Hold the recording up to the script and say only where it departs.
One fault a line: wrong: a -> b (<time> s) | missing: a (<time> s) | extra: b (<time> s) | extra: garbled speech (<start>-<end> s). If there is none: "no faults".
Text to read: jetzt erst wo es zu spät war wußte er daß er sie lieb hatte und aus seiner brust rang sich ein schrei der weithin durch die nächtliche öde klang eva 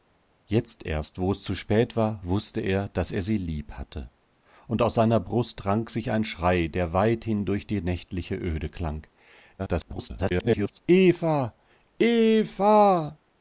extra: garbled speech (9.6-10.8 s)